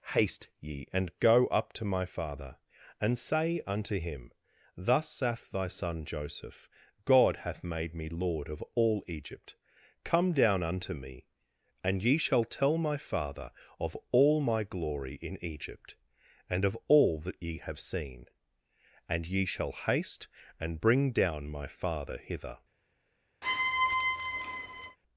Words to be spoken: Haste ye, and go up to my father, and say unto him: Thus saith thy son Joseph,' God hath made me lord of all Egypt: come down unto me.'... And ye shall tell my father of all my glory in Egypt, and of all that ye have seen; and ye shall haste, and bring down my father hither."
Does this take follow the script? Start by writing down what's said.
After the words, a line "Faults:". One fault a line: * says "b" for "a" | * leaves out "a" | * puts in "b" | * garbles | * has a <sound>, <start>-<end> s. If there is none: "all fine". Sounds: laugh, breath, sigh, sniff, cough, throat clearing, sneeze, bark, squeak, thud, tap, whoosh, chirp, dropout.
Haste ye, and go up to my father, and say unto him: Thus saith thy son Joseph,' God hath made me lord of all Egypt: come down unto me.'... And ye shall tell my father of all my glory in Egypt, and of all that ye have seen; and ye shall haste, and bring down my father hither."
Faults:
* has a squeak, 23.4-25.0 s